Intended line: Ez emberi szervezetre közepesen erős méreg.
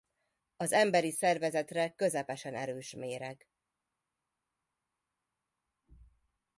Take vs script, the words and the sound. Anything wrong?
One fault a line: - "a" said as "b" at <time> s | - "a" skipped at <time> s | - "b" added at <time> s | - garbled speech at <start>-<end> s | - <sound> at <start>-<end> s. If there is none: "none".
- "Ez" said as "Az" at 0.6 s